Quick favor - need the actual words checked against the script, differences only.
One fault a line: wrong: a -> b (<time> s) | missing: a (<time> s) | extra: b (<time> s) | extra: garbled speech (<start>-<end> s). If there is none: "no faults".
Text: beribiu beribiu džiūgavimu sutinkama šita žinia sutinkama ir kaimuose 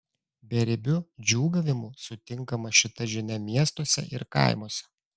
missing: beribiu (0.9 s)
wrong: sutinkama -> miestuose (3.5 s)